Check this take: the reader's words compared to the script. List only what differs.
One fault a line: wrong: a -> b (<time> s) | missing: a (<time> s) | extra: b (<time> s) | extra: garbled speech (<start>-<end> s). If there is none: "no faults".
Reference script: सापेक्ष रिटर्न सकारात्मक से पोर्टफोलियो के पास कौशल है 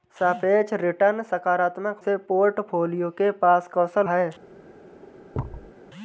no faults